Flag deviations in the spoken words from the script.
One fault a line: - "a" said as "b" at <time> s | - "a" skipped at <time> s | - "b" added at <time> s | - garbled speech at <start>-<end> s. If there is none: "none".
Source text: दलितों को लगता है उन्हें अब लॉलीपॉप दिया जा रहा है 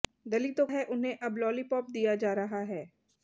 - "को लगता" skipped at 0.7 s